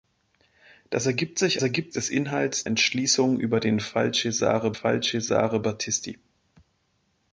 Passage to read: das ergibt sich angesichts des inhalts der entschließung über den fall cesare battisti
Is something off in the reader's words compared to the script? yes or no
yes